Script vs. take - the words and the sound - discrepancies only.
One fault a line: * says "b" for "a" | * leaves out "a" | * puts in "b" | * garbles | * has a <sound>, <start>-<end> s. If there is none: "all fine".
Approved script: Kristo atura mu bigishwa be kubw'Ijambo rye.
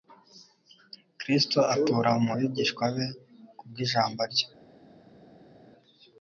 all fine